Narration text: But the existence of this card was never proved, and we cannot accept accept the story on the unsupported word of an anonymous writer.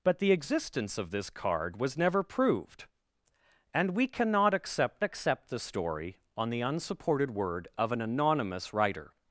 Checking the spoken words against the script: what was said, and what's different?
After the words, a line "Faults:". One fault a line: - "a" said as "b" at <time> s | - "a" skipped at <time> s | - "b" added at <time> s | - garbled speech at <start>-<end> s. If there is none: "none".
But the existence of this card was never proved, and we cannot accept accept the story on the unsupported word of an anonymous writer.
Faults:
none